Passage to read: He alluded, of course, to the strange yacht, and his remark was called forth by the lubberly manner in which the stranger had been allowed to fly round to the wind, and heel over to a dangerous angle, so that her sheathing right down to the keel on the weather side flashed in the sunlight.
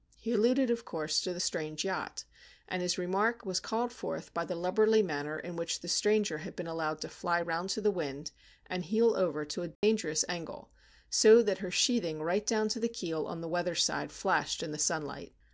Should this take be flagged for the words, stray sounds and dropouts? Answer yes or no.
yes